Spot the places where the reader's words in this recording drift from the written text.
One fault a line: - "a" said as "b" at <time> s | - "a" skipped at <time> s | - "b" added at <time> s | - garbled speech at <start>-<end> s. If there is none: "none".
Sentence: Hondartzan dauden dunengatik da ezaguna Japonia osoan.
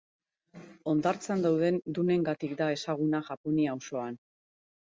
none